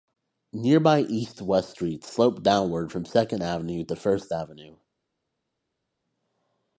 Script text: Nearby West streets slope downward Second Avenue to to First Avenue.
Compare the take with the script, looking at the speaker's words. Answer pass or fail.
fail